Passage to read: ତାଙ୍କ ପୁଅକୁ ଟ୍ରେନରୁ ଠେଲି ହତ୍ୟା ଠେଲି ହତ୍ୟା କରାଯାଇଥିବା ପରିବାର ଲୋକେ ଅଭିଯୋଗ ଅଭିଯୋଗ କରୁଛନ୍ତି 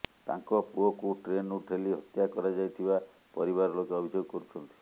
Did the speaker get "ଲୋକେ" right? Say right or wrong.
right